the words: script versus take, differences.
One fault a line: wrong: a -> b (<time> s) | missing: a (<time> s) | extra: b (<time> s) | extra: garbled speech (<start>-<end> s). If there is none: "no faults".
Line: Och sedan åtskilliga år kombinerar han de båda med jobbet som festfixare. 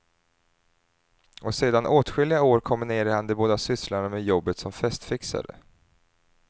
extra: sysslorna (3.6 s)